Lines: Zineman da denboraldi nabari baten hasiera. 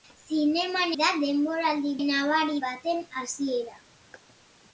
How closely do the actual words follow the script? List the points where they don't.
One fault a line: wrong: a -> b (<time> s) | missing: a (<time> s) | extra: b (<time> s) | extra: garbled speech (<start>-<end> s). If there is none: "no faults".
no faults